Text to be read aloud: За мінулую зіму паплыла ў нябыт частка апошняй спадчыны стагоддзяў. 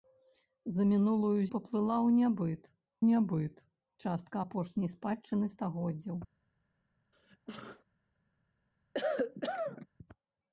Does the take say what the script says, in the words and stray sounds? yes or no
no